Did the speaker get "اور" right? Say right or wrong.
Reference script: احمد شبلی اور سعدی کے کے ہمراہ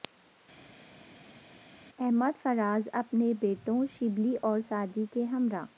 right